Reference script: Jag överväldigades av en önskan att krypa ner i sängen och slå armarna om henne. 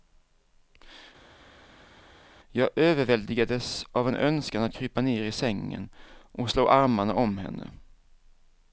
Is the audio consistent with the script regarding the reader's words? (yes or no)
yes